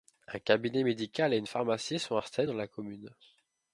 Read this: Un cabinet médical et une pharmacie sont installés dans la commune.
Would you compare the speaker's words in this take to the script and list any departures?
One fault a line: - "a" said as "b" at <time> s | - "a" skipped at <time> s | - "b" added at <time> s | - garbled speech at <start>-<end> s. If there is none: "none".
none